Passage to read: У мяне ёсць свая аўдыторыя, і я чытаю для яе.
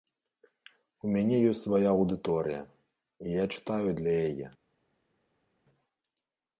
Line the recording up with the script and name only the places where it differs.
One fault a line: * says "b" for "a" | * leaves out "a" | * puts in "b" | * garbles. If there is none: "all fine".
all fine